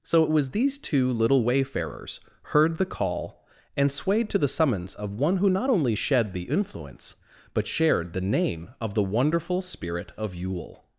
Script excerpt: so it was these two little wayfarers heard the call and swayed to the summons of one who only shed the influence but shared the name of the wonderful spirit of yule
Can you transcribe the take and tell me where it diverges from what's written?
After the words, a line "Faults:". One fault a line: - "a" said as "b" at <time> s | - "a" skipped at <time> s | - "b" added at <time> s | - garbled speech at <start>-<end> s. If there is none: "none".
so it was these two little wayfarers heard the call and swayed to the summons of one who not only shed the influence but shared the name of the wonderful spirit of yule
Faults:
- "not" added at 5.5 s